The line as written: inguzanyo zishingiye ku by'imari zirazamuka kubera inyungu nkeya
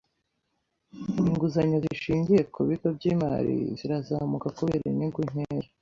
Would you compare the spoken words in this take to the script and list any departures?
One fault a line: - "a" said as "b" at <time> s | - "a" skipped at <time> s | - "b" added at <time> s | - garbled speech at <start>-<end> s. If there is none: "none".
- "bigo" added at 2.7 s